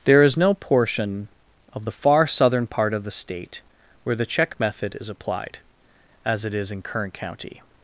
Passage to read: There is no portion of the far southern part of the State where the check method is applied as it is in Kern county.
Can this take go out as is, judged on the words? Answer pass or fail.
pass